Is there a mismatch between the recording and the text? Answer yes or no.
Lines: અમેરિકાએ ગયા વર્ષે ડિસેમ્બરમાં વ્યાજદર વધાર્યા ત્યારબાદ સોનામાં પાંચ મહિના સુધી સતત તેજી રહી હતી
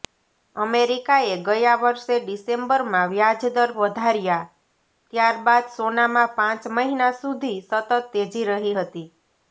no